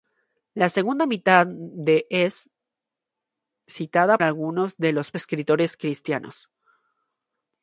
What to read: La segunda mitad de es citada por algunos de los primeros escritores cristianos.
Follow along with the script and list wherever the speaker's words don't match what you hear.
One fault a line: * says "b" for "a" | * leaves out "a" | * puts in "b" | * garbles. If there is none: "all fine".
* leaves out "por"
* leaves out "primeros"